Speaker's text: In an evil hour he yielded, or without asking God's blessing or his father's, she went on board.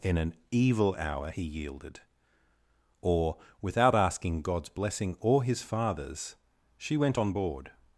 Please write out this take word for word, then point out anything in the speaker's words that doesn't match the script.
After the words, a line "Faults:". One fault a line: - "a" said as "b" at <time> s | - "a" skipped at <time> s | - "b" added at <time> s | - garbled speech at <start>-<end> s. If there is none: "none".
In an evil hour he yielded, or without asking God's blessing or his father's, she went on board.
Faults:
none